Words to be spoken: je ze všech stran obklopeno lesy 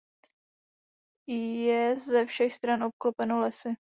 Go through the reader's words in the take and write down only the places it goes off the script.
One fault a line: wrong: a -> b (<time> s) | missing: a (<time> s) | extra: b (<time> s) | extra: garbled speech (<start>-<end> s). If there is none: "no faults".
no faults